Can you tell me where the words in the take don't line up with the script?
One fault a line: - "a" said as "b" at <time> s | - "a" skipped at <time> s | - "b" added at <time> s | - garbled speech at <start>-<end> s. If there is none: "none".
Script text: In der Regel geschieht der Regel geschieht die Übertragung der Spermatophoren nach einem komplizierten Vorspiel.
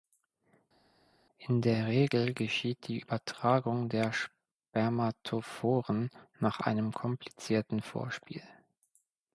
- "der Regel geschieht" skipped at 2.9 s